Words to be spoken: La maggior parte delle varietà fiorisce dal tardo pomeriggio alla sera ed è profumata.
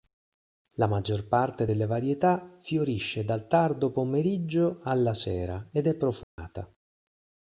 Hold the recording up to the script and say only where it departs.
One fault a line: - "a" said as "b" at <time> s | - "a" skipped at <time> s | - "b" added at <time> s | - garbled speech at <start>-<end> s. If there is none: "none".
none